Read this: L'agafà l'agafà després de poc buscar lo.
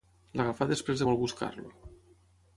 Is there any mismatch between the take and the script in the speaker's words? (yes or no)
yes